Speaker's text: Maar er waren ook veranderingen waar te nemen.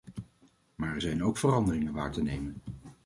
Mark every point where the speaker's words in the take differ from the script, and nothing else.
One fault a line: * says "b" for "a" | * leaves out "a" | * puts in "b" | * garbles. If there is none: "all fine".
* says "zijn" for "waren"